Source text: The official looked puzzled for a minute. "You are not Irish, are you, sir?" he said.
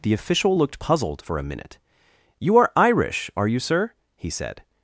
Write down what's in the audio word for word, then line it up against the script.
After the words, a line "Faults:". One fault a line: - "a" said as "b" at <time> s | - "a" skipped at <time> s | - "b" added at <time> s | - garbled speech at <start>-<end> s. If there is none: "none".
The official looked puzzled for a minute. "You are Irish, are you, sir?" he said.
Faults:
- "not" skipped at 2.7 s